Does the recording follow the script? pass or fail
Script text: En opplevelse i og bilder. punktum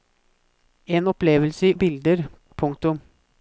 pass